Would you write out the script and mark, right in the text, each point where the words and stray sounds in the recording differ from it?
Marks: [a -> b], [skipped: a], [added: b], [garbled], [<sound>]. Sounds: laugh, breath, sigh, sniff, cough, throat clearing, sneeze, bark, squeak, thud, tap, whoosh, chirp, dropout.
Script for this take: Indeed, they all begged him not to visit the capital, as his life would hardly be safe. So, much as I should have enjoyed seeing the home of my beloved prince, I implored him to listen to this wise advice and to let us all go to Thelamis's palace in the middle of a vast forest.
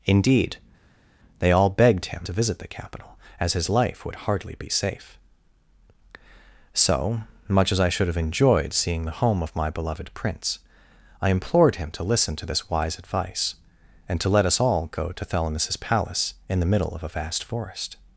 Indeed, they all begged him [skipped: not] to visit the capital, as his life would hardly be safe. So, much as I should have enjoyed seeing the home of my beloved prince, I implored him to listen to this wise advice and to let us all go to Thelamis's palace in the middle of a vast forest.